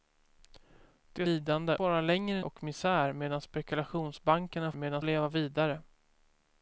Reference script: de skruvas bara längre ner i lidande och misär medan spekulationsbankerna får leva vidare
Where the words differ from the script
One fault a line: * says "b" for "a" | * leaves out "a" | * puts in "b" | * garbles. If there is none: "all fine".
* says "lidande" for "skruvas"
* leaves out "ner i lidande"
* says "medan" for "får"